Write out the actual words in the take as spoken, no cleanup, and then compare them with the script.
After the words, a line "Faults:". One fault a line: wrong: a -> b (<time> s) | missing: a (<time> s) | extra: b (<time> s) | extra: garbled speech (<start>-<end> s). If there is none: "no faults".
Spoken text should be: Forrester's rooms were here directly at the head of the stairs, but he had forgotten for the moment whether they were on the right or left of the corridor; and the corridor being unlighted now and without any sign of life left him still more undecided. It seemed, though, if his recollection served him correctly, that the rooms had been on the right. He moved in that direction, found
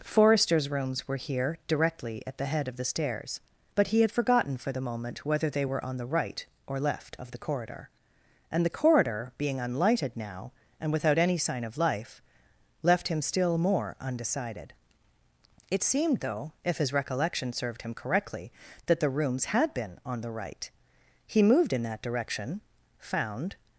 Forrester's rooms were here directly at the head of the stairs, but he had forgotten for the moment whether they were on the right or left of the corridor; and the corridor being unlighted now and without any sign of life left him still more undecided. It seemed, though, if his recollection served him correctly, that the rooms had been on the right. He moved in that direction, found
Faults:
no faults